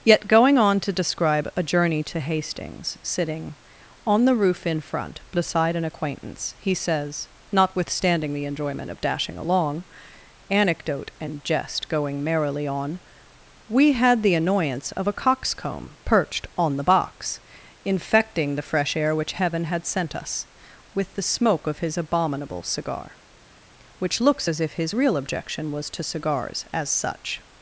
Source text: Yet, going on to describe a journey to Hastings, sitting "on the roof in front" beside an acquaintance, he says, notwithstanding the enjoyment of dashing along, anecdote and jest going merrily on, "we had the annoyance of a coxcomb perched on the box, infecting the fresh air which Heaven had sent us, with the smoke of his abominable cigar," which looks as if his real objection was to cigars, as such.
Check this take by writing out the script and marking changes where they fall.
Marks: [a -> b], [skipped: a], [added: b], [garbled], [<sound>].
Yet, going on to describe a journey to Hastings, sitting "on the roof in front" beside an acquaintance, he says, notwithstanding the enjoyment of dashing along, anecdote and jest going merrily on, "we had the annoyance of a coxcomb perched on the box, infecting the fresh air which Heaven had sent us, with the smoke of his abominable cigar," which looks as if his real objection was to cigars, as such.